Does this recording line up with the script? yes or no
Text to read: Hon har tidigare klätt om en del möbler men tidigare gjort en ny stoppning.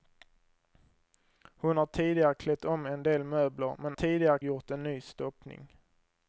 yes